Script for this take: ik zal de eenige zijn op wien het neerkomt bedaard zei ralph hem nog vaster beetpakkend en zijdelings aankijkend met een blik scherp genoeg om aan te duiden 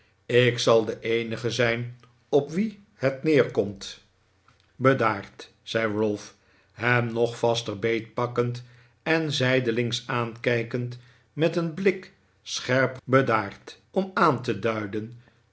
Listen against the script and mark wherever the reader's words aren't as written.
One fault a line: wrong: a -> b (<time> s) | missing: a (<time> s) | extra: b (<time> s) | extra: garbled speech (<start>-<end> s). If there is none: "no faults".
wrong: genoeg -> bedaard (13.0 s)